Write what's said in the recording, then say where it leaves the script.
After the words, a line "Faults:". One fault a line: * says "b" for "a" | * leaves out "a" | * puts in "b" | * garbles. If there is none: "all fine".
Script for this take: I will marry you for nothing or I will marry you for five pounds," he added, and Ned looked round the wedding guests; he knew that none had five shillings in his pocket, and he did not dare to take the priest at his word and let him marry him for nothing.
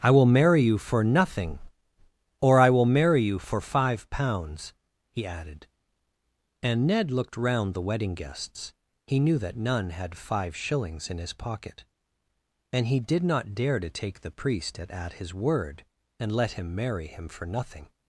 I will marry you for nothing or I will marry you for five pounds," he added, and Ned looked round the wedding guests; he knew that none had five shillings in his pocket, and he did not dare to take the priest at at his word and let him marry him for nothing.
Faults:
* puts in "at"